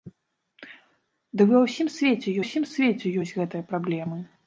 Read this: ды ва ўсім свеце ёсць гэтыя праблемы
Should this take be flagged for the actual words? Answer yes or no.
yes